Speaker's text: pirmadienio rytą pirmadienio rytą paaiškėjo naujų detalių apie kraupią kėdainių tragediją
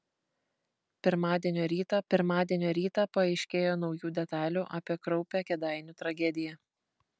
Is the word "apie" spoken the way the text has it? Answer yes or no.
yes